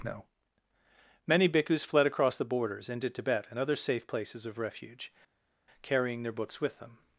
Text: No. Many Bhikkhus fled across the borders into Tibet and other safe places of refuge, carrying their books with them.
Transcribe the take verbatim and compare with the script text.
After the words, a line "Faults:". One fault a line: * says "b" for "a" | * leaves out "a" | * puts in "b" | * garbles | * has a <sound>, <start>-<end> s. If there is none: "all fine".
No. Many Bhikkhus fled across the borders into Tibet and other safe places of refuge, carrying their books with them.
Faults:
all fine